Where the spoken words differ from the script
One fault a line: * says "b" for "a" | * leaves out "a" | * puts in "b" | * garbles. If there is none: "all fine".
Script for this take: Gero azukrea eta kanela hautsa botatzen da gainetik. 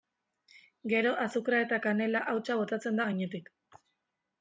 all fine